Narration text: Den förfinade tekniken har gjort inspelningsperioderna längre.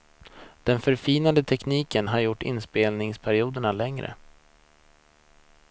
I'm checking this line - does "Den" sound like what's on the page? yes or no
yes